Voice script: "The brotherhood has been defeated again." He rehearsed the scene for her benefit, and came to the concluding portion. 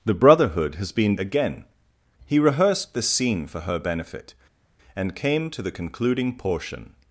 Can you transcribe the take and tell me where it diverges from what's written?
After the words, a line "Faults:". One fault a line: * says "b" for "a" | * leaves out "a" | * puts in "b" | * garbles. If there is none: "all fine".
"The brotherhood has been again." He rehearsed the scene for her benefit, and came to the concluding portion.
Faults:
* leaves out "defeated"